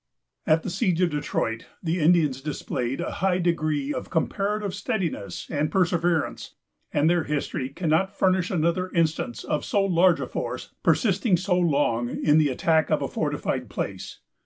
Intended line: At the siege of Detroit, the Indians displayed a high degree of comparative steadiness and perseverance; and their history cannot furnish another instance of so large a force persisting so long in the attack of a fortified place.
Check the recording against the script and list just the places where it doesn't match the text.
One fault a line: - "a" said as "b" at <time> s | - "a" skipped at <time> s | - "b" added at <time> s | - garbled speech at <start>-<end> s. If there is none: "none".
none